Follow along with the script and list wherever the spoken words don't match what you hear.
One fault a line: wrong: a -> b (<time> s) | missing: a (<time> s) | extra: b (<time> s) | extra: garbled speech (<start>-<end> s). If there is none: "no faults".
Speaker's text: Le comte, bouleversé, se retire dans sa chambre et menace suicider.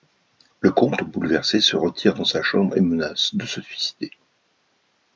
extra: de se (3.4 s)